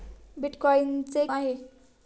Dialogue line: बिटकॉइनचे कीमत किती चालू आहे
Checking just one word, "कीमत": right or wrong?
wrong